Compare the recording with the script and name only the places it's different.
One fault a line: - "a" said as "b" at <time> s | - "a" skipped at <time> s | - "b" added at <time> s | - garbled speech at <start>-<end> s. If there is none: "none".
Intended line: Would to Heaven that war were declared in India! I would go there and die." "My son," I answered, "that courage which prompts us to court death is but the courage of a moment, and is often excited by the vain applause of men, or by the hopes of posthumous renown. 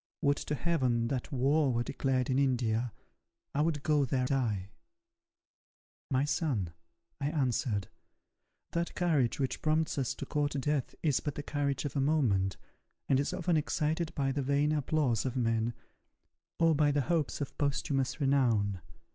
- "and" skipped at 4.3 s